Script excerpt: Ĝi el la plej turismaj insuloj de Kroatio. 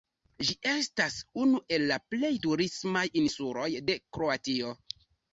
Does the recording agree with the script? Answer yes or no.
no